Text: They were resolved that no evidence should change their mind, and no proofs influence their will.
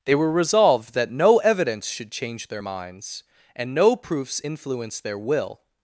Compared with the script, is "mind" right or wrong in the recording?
wrong